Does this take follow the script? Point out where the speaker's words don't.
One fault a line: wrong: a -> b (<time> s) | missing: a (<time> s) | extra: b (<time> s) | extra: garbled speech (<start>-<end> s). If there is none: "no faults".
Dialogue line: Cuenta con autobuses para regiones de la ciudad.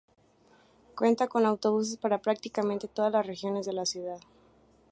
extra: prácticamente todas las (2.2 s)